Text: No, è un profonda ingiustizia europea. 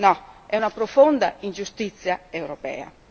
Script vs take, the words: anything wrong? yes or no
yes